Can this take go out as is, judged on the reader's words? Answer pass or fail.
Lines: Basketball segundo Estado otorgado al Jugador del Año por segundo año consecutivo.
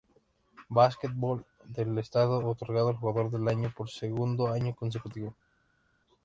fail